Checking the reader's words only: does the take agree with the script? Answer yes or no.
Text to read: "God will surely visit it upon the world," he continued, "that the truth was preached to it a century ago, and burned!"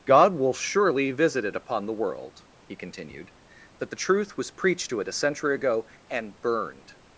yes